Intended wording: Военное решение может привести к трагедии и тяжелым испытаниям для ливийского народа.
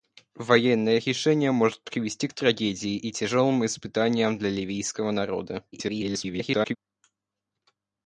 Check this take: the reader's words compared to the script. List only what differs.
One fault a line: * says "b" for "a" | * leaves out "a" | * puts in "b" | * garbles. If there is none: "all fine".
* garbles